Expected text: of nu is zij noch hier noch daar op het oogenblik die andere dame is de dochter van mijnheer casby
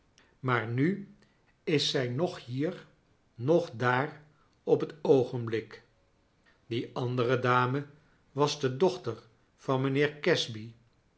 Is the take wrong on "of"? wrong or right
wrong